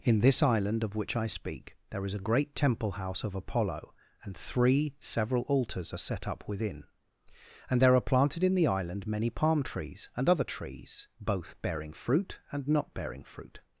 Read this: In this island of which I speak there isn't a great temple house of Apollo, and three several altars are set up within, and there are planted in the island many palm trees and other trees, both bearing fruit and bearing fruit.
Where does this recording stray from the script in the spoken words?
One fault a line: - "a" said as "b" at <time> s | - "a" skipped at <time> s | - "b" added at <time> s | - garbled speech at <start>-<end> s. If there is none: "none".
- "isn't" said as "is" at 2.0 s
- "not" added at 12.7 s